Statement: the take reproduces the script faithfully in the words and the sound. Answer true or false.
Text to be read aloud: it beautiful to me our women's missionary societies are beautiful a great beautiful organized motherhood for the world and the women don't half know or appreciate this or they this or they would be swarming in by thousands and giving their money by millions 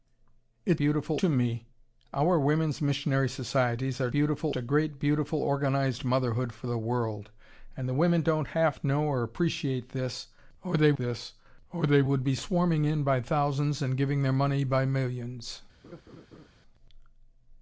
false